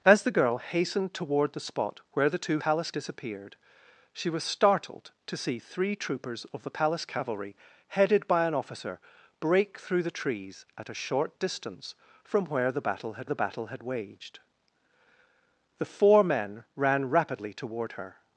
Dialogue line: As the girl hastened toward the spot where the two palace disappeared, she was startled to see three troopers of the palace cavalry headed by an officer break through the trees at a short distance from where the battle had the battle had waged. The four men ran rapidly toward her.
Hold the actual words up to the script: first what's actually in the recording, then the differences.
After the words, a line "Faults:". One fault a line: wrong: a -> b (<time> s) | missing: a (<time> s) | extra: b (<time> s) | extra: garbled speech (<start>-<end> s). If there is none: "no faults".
As the girl hastened toward the spot where the two palace disappeared, she was startled to see three troopers of the palace cavalry headed by an officer break through the trees at a short distance from where the battle had the battle had waged. The four men ran rapidly toward her.
Faults:
no faults